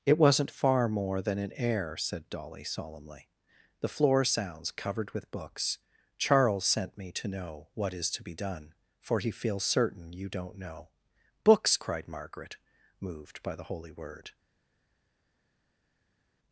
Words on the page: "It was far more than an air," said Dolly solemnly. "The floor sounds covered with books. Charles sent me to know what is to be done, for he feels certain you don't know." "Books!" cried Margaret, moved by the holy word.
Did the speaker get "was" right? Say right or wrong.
wrong